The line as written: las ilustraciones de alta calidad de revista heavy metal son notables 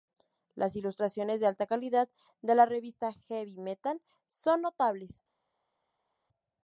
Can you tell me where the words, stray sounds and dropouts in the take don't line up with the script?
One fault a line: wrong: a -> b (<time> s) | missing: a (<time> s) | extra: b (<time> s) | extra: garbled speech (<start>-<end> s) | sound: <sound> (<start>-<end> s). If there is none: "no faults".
extra: la (2.5 s)